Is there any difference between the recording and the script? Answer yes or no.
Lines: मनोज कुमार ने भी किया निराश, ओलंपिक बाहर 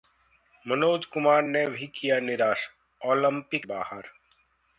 no